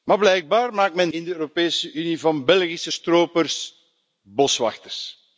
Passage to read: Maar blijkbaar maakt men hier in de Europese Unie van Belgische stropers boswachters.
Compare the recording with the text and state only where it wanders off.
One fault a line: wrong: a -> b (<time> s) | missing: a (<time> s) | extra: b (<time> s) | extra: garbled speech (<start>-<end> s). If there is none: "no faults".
missing: hier (1.1 s)